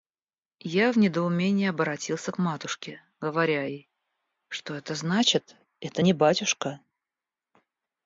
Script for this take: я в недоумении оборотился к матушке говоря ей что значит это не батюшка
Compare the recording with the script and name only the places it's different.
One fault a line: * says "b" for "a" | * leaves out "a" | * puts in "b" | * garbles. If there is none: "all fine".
* puts in "это"